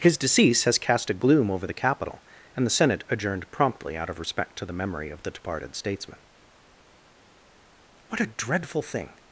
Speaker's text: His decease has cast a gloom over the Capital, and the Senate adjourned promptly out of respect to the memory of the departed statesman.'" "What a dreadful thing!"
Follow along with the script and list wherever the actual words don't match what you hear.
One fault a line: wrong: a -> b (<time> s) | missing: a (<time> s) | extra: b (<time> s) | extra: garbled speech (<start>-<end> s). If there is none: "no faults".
no faults